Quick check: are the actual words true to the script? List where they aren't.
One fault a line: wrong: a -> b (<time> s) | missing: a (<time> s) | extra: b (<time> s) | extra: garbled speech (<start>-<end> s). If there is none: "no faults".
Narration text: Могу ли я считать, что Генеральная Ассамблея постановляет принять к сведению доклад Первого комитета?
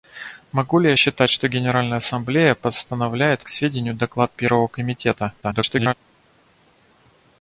missing: принять (3.4 s)
extra: garbled speech (5.4-5.9 s)